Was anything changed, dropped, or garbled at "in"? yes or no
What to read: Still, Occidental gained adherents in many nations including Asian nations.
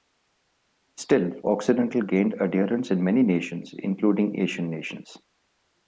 no